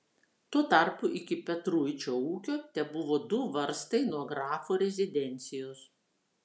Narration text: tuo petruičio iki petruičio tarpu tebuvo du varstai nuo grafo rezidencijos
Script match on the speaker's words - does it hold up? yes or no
no